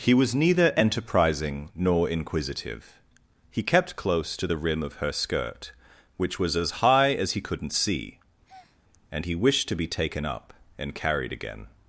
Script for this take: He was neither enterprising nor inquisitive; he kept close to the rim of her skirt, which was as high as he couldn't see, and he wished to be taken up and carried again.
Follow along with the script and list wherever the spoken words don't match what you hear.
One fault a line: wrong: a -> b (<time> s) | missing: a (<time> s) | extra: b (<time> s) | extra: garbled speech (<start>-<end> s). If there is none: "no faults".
no faults